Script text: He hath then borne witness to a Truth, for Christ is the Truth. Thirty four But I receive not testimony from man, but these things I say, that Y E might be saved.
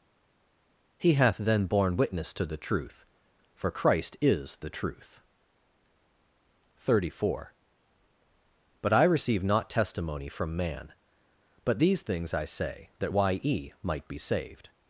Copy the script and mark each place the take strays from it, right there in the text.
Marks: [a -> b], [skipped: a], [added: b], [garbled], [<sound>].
He hath then borne witness to [a -> the] Truth, for Christ is the Truth. Thirty four But I receive not testimony from man, but these things I say, that Y E might be saved.